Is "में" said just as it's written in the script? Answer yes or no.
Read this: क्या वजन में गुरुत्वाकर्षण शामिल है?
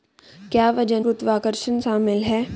no